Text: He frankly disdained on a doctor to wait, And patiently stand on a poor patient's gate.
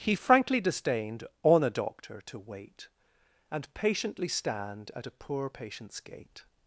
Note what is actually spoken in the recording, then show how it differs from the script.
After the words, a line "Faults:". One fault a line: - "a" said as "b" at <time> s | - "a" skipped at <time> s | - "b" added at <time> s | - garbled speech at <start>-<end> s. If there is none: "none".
He frankly disdained on a doctor to wait, And patiently stand at a poor patient's gate.
Faults:
- "on" said as "at" at 4.9 s